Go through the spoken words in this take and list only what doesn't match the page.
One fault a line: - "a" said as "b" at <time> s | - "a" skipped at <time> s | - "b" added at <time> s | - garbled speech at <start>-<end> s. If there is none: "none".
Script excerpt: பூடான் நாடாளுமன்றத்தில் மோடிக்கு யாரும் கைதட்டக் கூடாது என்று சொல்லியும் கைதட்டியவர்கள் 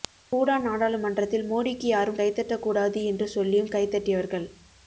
none